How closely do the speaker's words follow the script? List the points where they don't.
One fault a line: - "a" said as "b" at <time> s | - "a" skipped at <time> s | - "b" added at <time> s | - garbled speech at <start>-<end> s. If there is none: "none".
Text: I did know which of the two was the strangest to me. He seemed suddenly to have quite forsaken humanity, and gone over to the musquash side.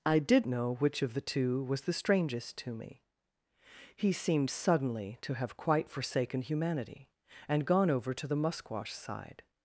none